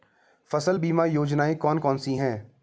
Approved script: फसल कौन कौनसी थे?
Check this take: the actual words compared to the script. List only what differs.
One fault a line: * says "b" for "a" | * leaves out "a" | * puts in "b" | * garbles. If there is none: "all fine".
* puts in "बीमा योजनाएँ"
* says "हैं" for "थे"